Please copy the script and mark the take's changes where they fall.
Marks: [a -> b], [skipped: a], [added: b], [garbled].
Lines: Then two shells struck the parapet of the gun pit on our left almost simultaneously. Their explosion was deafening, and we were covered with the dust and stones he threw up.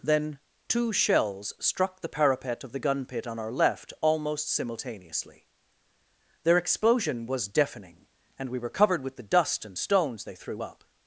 Then two shells struck the parapet of the gun pit on our left almost simultaneously. Their explosion was deafening, and we were covered with the dust and stones [he -> they] threw up.